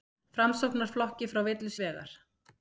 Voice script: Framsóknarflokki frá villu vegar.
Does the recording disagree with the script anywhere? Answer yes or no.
no